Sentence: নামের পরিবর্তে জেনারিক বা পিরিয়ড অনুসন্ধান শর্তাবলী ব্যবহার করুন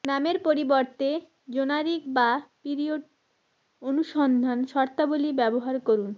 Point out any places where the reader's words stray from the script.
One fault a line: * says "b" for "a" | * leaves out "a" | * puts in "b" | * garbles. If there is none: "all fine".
all fine